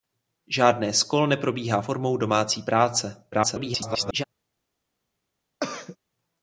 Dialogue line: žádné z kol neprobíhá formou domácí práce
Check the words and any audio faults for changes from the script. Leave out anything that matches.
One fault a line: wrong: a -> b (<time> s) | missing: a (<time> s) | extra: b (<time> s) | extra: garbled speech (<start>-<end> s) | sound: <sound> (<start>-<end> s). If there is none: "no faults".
extra: garbled speech (3.3-4.2 s)
sound: throat clearing (5.6-6.0 s)